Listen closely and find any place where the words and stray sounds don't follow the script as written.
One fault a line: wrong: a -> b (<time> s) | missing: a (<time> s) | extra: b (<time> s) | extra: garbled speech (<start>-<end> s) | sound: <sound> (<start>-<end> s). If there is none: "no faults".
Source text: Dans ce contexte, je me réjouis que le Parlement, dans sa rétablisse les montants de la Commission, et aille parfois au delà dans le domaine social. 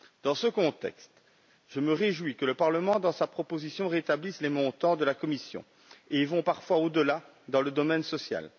extra: proposition (3.3 s)